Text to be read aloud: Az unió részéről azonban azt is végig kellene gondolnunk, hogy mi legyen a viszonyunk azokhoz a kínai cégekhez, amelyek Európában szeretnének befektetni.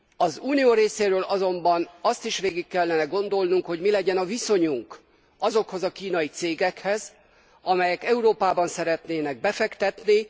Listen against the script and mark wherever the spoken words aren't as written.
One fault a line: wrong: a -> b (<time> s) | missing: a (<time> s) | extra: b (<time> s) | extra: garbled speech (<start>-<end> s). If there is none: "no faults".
no faults